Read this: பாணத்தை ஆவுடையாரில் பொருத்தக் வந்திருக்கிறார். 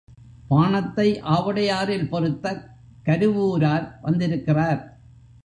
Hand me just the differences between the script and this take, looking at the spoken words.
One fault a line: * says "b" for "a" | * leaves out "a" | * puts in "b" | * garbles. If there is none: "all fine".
* puts in "கருவூரார்"